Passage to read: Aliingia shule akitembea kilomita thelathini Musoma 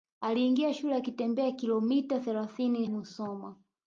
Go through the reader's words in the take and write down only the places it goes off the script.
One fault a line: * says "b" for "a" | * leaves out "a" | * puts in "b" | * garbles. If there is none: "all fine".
all fine